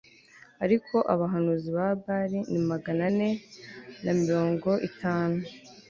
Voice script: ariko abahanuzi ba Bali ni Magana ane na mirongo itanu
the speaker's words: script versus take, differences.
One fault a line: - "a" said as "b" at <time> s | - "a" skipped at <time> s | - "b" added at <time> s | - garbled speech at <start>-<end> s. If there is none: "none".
none